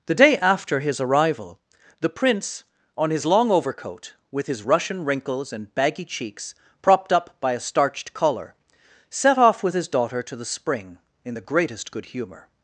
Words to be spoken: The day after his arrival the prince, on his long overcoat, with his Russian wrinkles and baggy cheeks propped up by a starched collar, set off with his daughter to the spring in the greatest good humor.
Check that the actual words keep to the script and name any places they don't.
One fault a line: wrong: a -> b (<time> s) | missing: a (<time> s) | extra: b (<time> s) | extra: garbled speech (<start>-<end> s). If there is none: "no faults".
no faults